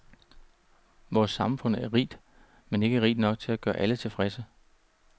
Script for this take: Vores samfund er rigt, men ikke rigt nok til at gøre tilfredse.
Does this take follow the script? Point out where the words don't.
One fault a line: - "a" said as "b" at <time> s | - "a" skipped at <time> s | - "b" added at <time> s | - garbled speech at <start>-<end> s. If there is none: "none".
- "alle" added at 3.8 s